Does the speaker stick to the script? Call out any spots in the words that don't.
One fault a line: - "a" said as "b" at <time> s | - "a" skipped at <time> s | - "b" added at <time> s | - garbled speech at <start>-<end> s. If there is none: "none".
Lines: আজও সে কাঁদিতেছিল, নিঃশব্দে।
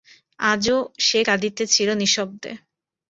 none